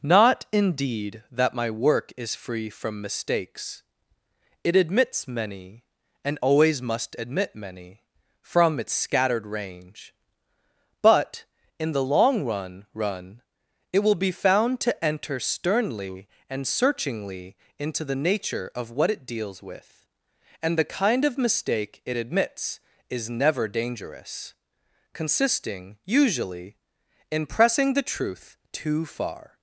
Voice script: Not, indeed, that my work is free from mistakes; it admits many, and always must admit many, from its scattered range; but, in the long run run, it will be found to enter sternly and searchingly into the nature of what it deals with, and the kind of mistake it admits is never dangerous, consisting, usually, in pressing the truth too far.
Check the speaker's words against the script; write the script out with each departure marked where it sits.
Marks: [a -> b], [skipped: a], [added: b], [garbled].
Not, indeed, that my work is free from mistakes; it admits many, and always must admit many, from its scattered range; but, in the long run run, it will be found to enter sternly and searchingly into the nature of what it deals with, and the kind of mistake it admits is never dangerous, consisting, usually, in pressing the truth too far.